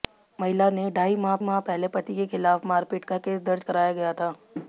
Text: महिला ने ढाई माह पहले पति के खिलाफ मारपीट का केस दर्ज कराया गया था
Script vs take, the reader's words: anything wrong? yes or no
yes